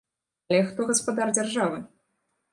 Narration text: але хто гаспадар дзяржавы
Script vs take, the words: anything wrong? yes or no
no